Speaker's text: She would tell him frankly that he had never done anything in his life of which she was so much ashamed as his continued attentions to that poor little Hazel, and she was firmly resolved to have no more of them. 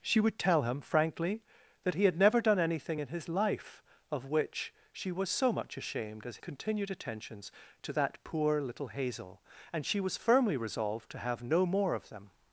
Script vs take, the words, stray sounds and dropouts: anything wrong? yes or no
yes